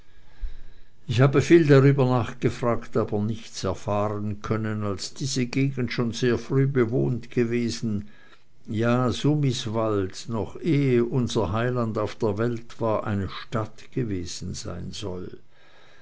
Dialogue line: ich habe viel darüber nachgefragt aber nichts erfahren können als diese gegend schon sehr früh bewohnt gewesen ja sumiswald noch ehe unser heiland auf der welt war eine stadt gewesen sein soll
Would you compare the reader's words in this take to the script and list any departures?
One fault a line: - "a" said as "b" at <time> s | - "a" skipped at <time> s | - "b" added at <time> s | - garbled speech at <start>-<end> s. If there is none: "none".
none